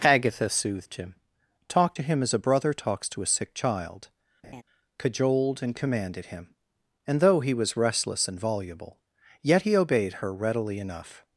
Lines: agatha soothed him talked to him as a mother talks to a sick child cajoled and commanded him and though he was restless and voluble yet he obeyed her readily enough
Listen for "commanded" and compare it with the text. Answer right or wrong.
right